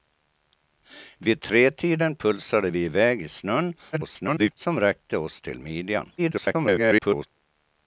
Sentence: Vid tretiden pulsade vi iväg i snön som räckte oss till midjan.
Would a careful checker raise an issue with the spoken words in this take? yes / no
yes